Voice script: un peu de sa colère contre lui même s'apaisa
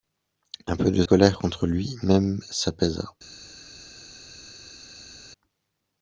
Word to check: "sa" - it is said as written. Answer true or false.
false